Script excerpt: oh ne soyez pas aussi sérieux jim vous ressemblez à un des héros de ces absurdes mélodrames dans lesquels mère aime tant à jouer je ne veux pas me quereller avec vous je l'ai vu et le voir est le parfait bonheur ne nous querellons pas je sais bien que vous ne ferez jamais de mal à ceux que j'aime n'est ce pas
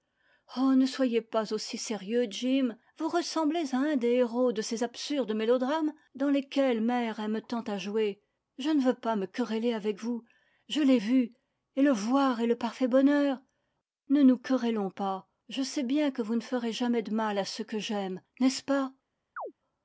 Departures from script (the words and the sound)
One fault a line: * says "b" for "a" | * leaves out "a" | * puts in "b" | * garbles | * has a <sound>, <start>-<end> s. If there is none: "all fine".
* has a chirp, 19.4-19.5 s